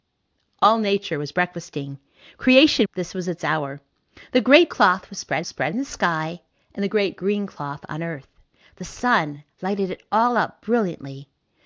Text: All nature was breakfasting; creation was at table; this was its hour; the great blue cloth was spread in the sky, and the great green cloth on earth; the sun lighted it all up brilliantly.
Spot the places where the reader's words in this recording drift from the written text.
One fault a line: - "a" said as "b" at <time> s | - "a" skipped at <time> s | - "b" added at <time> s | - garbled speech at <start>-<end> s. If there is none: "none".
- "was at table" skipped at 2.9 s
- "blue" skipped at 4.7 s
- "spread" added at 5.4 s